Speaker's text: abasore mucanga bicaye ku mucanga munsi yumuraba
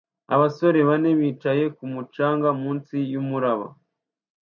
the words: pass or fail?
fail